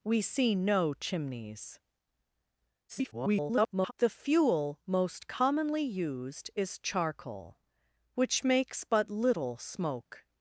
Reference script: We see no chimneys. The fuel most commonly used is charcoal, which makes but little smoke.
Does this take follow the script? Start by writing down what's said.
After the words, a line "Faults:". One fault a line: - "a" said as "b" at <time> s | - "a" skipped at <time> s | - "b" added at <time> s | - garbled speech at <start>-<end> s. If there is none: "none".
We see no chimneys. [garbled] The fuel most commonly used is charcoal, which makes but little smoke.
Faults:
- garbled speech at 2.9-3.9 s